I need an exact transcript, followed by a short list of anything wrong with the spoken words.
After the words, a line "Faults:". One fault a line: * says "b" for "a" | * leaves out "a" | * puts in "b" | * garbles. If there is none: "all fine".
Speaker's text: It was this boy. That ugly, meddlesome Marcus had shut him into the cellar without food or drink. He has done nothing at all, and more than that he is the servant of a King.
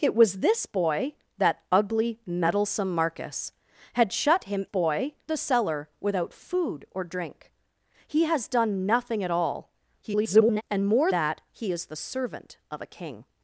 It was this boy. That ugly, meddlesome Marcus had shut him boy the cellar without food or drink. He has done nothing at all, [garbled] and more that he is the servant of a King.
Faults:
* says "boy" for "into"
* garbles
* leaves out "than"